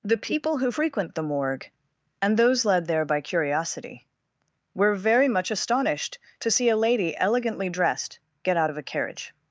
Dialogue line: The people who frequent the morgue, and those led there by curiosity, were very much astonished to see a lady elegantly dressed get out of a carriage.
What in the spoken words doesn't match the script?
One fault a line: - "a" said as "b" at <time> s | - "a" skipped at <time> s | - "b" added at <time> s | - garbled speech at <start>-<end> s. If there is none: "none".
none